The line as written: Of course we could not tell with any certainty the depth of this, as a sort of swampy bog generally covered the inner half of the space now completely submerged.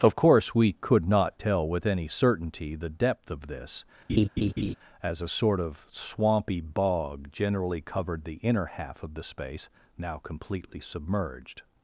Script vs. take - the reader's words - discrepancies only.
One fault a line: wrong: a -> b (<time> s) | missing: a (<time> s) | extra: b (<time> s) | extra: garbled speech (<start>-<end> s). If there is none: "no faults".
no faults